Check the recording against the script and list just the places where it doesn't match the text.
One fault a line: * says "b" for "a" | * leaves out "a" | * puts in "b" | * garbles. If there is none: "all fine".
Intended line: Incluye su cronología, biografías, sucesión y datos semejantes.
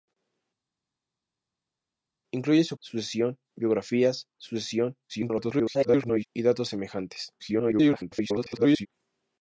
* says "sucesión" for "cronología"
* garbles
* garbles